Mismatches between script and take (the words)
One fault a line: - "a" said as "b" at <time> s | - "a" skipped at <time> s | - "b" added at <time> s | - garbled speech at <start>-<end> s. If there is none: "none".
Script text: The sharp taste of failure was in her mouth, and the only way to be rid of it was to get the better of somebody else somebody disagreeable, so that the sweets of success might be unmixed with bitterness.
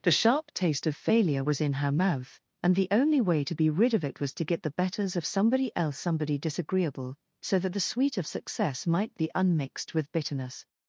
- "better" said as "betters" at 4.7 s
- "sweets" said as "sweet" at 7.8 s